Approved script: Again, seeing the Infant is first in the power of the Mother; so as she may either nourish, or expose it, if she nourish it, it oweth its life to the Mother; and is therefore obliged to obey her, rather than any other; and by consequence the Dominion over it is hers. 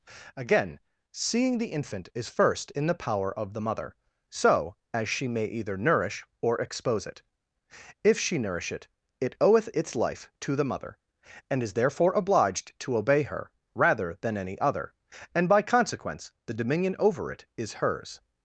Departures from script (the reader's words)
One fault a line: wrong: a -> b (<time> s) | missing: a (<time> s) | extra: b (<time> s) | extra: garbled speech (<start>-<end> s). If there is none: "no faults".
no faults